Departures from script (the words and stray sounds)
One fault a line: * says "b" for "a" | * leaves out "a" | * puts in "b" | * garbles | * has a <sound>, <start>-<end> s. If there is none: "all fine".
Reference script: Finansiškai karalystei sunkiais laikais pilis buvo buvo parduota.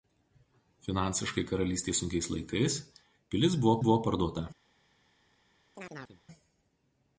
* has a chirp, 5.7-6.2 s